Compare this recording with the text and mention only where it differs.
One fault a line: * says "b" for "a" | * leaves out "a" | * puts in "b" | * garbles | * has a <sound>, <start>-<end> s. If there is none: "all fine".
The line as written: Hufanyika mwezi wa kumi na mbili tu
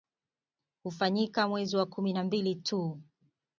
all fine